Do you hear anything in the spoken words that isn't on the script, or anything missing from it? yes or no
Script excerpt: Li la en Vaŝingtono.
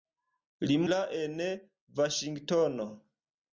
no